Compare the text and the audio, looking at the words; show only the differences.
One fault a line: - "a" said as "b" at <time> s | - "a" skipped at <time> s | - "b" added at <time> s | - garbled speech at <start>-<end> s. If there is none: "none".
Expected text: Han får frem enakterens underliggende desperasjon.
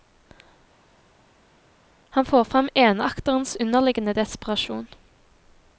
none